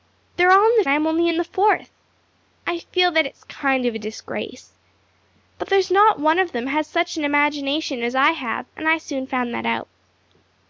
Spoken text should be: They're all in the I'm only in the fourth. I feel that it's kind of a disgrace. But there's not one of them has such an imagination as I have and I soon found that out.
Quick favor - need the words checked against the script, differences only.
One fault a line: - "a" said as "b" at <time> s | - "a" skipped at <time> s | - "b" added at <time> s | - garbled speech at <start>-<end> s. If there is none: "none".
none